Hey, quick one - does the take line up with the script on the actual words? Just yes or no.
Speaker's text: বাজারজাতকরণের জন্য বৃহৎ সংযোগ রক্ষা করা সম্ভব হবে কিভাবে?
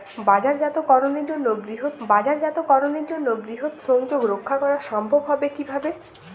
no